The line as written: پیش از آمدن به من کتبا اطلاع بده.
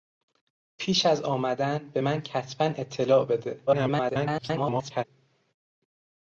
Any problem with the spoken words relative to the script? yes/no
yes